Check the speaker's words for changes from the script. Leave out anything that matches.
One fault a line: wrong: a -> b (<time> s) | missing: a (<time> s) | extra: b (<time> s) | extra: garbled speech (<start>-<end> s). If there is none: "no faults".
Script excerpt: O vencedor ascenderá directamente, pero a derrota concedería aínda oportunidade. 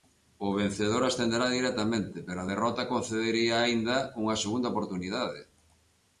extra: unha segunda (4.2 s)